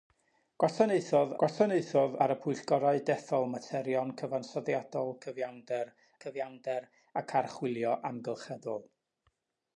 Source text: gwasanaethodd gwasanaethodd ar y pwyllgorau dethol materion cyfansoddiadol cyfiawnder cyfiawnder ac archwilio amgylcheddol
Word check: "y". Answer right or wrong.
right